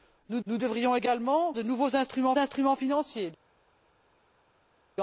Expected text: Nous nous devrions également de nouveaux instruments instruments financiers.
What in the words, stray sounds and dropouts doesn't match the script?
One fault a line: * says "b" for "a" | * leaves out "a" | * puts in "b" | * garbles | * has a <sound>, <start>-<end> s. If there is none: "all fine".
all fine